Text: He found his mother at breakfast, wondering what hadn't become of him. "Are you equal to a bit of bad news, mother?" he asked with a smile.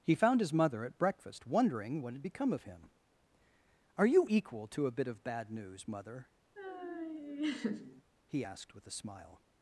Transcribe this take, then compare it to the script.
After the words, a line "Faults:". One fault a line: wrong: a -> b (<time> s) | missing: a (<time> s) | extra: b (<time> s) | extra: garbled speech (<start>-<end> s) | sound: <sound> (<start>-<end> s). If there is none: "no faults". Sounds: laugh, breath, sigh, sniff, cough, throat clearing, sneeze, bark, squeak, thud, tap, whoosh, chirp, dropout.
He found his mother at breakfast, wondering what had become of him. "Are you equal to a bit of bad news, mother?" he asked with a smile.
Faults:
wrong: hadn't -> had (2.1 s)
sound: laugh (6.6-8.0 s)